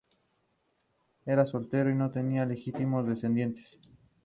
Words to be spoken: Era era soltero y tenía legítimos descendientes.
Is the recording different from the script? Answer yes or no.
yes